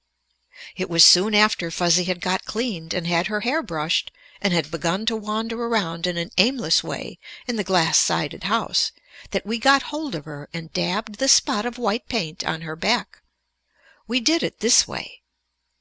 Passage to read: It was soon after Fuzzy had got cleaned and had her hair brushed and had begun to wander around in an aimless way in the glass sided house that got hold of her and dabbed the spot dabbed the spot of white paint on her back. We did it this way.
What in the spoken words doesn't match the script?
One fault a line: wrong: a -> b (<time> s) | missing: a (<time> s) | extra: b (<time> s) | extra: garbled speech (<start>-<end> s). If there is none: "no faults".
extra: we (9.5 s)
missing: dabbed the spot (11.7 s)